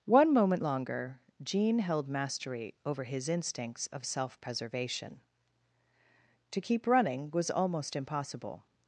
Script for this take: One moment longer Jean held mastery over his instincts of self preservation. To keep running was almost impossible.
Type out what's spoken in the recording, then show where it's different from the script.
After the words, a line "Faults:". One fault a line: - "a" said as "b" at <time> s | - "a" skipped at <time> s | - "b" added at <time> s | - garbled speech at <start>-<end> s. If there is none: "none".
One moment longer Jean held mastery over his instincts of self preservation. To keep running was almost impossible.
Faults:
none